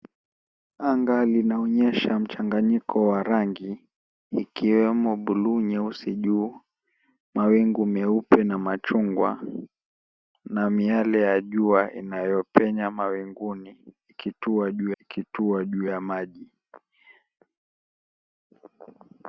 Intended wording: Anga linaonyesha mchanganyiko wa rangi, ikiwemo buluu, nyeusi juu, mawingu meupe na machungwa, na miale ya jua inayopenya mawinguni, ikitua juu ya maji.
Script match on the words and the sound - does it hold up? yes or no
no